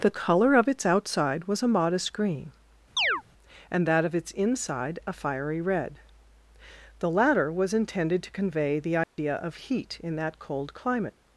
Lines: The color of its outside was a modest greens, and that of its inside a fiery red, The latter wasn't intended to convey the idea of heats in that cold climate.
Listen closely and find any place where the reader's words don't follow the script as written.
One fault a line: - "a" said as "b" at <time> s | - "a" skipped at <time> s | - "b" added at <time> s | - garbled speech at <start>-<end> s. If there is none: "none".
- "greens" said as "green" at 2.1 s
- "wasn't" said as "was" at 7.5 s
- "heats" said as "heat" at 9.5 s